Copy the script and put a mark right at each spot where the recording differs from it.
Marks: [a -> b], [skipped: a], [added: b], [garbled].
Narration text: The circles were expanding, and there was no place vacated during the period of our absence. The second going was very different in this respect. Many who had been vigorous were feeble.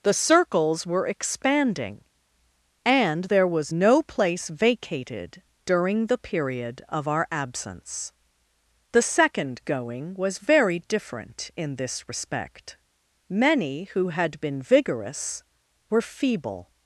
The circles were expanding, and there was no place vacated during the period of our absence. The second going was very different in this respect. Many who had been vigorous were feeble.